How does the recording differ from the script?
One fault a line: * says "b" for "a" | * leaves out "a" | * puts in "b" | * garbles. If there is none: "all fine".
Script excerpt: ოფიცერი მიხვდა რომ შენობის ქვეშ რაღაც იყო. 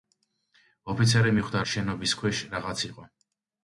* leaves out "რომ"